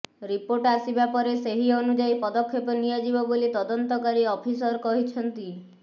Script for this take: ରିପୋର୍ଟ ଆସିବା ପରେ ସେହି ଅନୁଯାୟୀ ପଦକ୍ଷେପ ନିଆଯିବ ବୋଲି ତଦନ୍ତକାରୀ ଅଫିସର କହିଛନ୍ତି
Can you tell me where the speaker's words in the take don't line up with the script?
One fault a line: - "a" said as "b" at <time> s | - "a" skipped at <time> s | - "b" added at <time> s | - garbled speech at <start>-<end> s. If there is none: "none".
none